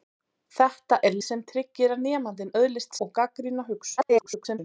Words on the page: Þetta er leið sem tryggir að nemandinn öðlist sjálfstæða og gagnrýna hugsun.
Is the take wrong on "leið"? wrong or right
wrong